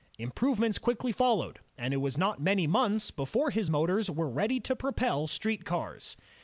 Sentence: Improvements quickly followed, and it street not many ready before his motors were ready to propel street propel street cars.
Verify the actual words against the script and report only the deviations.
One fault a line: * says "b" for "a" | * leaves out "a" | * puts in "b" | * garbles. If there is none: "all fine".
* says "was" for "street"
* says "months" for "ready"
* leaves out "propel street"